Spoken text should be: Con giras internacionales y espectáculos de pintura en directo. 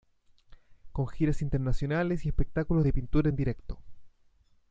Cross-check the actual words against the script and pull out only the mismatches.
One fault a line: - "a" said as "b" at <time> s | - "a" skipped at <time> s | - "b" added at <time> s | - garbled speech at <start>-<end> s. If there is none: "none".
none